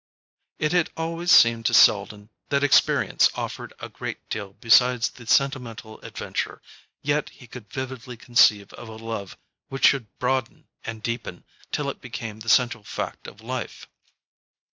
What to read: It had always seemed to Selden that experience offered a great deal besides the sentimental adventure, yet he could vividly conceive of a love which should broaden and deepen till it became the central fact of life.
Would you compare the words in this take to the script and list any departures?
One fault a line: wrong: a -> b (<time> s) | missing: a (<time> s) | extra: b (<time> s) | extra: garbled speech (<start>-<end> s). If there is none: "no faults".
no faults